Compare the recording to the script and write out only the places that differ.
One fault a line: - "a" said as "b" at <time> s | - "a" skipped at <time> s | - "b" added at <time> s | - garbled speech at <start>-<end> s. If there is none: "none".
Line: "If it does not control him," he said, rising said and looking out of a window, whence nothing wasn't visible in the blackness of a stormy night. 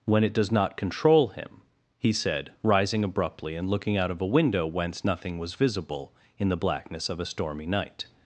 - "If" said as "When" at 0.1 s
- "said" said as "abruptly" at 3.0 s
- "wasn't" said as "was" at 5.4 s